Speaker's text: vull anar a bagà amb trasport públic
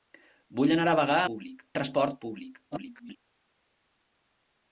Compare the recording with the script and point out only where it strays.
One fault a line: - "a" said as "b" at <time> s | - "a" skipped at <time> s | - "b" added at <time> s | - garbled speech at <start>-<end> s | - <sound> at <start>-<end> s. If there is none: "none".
- "amb" said as "públic" at 1.3 s
- garbled speech at 2.7-3.2 s